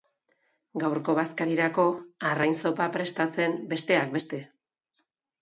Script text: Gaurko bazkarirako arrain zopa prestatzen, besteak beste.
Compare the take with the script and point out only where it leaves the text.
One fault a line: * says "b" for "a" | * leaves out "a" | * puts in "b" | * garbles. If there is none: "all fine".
all fine